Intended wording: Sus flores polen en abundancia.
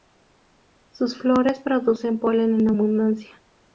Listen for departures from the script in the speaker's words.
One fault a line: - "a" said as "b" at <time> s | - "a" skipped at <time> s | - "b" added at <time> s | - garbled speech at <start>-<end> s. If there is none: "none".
- "producen" added at 1.6 s